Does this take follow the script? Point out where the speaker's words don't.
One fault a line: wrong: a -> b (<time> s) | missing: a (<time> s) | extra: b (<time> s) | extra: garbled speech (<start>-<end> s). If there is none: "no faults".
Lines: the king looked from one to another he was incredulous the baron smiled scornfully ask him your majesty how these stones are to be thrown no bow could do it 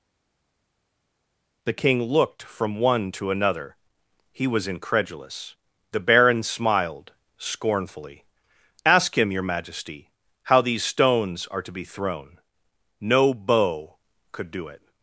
no faults